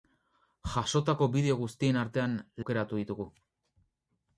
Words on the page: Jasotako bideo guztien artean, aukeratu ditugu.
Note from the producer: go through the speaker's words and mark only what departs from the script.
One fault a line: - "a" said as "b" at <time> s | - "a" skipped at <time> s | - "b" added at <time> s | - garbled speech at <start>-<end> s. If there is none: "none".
none